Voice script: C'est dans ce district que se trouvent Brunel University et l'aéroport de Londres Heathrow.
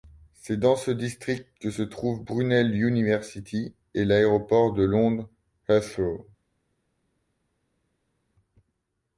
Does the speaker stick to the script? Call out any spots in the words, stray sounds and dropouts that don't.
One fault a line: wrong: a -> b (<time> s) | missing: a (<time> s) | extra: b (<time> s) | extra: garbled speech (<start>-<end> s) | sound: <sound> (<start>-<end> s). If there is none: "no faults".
no faults